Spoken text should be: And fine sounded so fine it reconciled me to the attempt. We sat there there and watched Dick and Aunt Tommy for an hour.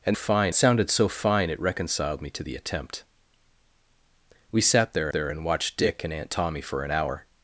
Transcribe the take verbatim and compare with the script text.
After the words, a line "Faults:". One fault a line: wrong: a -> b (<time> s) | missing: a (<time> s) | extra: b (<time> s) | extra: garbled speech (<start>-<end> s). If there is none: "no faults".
And fine sounded so fine it reconciled me to the attempt. We sat there there and watched Dick and Aunt Tommy for an hour.
Faults:
no faults